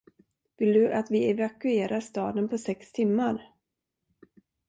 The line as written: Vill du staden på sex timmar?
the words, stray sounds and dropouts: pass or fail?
fail